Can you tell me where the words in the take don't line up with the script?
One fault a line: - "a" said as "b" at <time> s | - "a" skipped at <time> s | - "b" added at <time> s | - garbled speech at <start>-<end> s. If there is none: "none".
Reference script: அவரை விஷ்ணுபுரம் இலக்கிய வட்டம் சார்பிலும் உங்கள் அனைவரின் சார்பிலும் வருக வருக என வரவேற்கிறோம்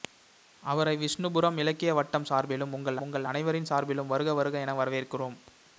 - "உங்கள்" added at 3.0 s